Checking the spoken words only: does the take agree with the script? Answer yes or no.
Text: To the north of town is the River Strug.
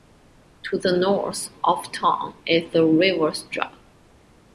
yes